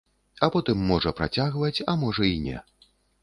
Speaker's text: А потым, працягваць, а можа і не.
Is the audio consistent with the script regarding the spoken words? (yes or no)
no